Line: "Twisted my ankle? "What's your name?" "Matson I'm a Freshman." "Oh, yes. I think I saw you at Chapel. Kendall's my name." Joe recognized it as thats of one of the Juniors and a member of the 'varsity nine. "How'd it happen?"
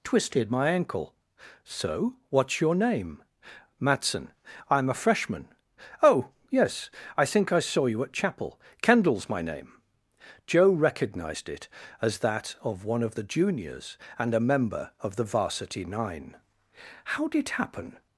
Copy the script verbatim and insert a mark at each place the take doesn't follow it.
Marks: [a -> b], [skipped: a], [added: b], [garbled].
"Twisted my ankle? [added: So] "What's your name?" "Matson I'm a Freshman." "Oh, yes. I think I saw you at Chapel. Kendall's my name." Joe recognized it as [thats -> that] of one of the Juniors and a member of the 'varsity nine. "How'd it happen?"